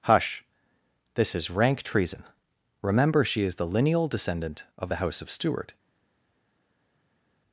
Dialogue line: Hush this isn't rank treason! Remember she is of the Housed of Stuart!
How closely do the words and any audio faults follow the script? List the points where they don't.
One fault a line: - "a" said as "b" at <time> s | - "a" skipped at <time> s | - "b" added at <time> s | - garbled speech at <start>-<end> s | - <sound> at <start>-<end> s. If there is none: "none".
- "isn't" said as "is" at 1.4 s
- "the lineal descendant" added at 3.6 s
- "Housed" said as "House" at 5.0 s